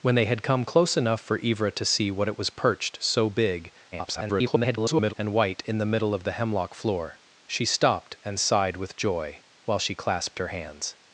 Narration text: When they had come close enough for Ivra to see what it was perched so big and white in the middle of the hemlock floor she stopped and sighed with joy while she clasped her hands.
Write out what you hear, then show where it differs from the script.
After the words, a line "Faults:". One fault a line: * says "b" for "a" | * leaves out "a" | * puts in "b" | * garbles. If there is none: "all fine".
When they had come close enough for Ivra to see what it was perched so big [garbled] and white in the middle of the hemlock floor she stopped and sighed with joy while she clasped her hands.
Faults:
* garbles